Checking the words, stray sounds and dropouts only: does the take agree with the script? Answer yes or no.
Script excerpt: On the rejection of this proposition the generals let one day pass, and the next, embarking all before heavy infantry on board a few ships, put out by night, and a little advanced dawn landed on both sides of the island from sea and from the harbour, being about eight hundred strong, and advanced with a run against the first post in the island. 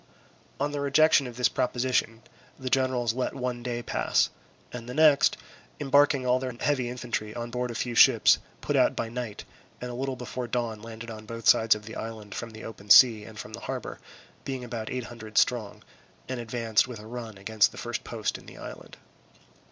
no